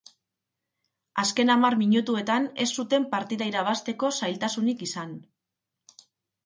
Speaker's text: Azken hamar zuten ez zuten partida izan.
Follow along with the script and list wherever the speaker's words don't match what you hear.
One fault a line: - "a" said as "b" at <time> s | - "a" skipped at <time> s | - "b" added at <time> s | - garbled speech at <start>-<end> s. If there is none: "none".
- "zuten" said as "minutuetan" at 1.8 s
- "irabazteko zailtasunik" added at 3.5 s